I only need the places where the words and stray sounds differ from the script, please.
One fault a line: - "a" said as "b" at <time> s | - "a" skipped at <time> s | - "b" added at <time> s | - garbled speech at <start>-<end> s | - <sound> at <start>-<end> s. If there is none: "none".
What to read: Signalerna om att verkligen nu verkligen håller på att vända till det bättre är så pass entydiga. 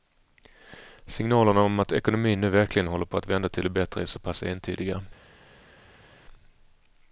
- "verkligen" said as "ekonomin" at 1.9 s